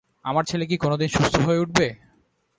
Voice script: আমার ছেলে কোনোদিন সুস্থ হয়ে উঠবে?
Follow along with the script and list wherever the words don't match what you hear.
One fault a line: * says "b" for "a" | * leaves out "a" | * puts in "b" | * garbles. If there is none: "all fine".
* puts in "কি"